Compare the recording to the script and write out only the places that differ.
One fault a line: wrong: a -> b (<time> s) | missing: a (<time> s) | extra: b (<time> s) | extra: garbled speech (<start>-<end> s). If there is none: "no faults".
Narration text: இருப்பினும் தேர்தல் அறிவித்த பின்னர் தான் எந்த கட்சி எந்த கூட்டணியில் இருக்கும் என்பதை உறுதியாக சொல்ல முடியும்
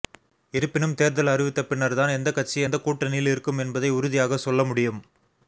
no faults